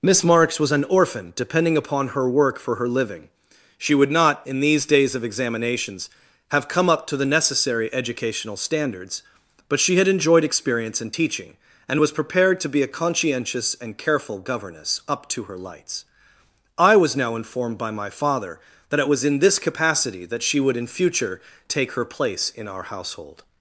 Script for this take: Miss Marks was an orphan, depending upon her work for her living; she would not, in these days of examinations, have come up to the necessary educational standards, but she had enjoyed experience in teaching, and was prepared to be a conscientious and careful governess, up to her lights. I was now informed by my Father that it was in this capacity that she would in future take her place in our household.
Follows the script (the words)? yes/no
yes